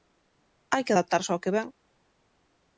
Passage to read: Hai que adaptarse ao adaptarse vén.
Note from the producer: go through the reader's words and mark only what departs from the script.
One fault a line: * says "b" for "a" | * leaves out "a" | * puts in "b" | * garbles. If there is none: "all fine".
* says "que" for "adaptarse"